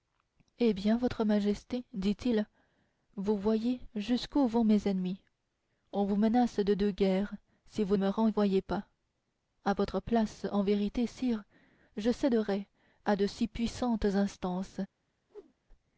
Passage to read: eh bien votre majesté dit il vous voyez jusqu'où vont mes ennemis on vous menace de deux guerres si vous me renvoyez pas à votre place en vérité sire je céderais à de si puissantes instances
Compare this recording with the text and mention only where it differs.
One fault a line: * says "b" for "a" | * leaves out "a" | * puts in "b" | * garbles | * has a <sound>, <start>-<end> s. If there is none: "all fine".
* has a whoosh, 15.3-15.5 s